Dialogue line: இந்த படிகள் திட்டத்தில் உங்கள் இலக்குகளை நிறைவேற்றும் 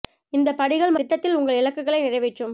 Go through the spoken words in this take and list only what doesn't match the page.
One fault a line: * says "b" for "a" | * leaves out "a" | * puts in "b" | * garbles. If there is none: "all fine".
all fine